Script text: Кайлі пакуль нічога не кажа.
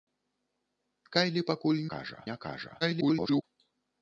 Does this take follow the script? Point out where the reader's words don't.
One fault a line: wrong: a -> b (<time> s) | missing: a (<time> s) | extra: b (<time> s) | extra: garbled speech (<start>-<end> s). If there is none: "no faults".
wrong: нічога -> кажа (1.9 s)
extra: garbled speech (2.8-3.4 s)